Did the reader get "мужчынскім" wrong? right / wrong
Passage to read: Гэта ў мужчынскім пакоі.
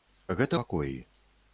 wrong